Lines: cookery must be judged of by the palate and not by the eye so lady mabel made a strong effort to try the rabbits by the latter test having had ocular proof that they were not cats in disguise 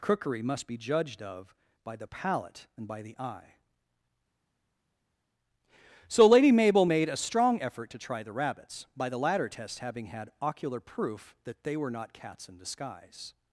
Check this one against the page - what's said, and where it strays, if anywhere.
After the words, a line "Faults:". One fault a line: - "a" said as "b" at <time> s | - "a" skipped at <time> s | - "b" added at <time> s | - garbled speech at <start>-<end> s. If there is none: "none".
cookery must be judged of by the palate and by the eye so lady mabel made a strong effort to try the rabbits by the latter test having had ocular proof that they were not cats in disguise
Faults:
- "not" skipped at 2.9 s